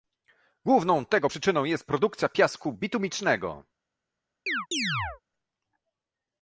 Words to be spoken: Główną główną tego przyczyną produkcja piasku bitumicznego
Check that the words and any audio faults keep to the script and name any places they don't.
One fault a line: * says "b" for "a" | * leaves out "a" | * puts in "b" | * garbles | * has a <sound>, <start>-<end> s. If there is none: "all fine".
* leaves out "główną"
* puts in "jest"
* has a chirp, 4.5-5.2 s